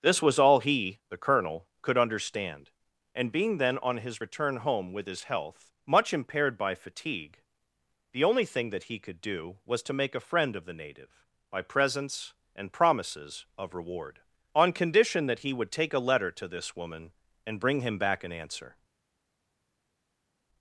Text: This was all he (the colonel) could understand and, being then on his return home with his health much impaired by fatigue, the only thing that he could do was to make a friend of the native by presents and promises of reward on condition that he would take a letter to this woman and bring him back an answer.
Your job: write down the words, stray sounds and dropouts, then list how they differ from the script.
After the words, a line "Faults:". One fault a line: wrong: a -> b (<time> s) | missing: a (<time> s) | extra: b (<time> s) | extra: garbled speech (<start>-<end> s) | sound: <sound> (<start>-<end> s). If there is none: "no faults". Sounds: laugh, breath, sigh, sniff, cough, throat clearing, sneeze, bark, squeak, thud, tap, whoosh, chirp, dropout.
This was all he (the colonel) could understand and, being then on his return home with his health much impaired by fatigue, the only thing that he could do was to make a friend of the native by presents and promises of reward on condition that he would take a letter to this woman and bring him back an answer.
Faults:
no faults